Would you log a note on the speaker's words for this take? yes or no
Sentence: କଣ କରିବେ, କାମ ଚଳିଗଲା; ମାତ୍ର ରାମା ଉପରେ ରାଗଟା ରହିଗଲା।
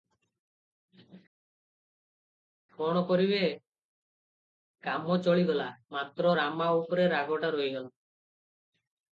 no